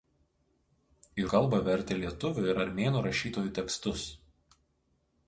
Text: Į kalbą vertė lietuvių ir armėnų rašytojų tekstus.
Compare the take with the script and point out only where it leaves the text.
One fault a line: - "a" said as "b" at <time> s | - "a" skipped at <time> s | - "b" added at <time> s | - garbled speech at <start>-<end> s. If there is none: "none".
none